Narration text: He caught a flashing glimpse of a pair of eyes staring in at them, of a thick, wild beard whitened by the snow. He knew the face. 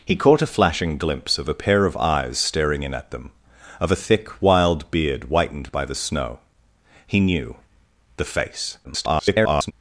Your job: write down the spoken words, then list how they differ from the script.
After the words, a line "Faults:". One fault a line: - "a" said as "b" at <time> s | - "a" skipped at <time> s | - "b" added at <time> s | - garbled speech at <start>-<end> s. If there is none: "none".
He caught a flashing glimpse of a pair of eyes staring in at them, of a thick, wild beard whitened by the snow. He knew the face. [garbled]
Faults:
- garbled speech at 8.8-9.7 s